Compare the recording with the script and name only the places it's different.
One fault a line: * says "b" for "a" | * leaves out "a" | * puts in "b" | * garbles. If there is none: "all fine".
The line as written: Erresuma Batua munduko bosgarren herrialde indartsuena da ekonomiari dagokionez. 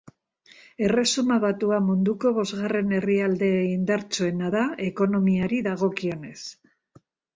all fine